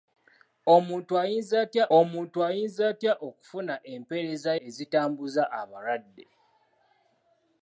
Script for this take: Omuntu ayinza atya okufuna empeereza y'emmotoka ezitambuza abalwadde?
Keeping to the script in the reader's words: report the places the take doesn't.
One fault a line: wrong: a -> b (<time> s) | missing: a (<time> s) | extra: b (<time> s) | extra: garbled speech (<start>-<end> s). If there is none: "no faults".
extra: omuntu ayinza atya (2.0 s)
missing: y'emmotoka (4.5 s)